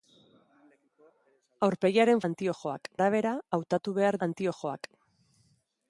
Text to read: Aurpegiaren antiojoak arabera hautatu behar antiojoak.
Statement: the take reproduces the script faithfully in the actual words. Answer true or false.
true